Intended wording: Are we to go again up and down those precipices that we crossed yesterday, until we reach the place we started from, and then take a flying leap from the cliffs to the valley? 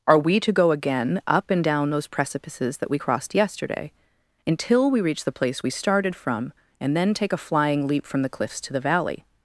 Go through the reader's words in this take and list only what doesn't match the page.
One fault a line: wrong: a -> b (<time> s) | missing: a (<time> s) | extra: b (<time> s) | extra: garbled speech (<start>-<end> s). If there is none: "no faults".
no faults